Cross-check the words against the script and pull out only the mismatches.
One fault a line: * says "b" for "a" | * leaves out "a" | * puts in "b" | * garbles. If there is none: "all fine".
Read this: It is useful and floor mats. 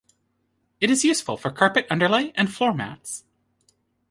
* puts in "for carpet underlay"